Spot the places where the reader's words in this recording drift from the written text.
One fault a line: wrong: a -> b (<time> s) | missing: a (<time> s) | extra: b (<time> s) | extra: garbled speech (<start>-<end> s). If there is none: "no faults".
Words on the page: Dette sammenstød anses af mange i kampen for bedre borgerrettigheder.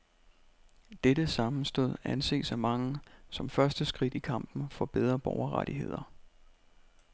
extra: som første skridt (3.3 s)